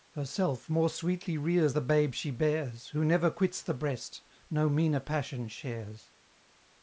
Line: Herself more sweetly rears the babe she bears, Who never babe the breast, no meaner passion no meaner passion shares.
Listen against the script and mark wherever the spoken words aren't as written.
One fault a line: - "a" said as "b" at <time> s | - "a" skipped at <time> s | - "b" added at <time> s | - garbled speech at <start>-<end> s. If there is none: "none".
- "babe" said as "quits" at 3.3 s
- "no meaner passion" skipped at 5.5 s